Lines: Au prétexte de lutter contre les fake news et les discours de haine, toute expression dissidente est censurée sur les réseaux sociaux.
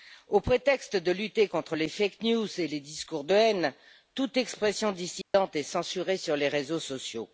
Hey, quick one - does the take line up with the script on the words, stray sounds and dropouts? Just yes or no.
no